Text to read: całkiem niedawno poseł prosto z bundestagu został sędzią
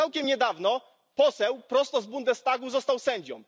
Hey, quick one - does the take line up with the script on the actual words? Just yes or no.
yes